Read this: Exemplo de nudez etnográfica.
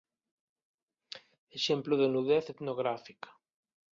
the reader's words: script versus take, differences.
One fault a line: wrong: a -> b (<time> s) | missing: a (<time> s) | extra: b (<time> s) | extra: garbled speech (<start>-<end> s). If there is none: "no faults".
no faults